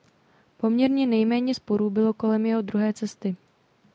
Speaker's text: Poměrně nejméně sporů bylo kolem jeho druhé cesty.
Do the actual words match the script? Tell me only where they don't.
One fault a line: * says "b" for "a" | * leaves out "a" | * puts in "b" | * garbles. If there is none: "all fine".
all fine